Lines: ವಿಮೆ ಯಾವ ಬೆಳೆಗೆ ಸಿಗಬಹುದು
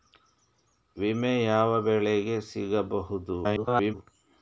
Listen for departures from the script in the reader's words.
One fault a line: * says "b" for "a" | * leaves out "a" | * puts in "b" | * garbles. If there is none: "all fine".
* garbles